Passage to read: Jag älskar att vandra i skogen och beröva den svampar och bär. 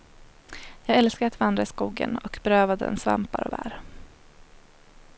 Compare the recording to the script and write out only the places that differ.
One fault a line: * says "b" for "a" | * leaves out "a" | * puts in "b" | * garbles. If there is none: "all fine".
all fine